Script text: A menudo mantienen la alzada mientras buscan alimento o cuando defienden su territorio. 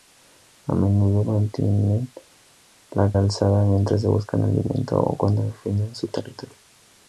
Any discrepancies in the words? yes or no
no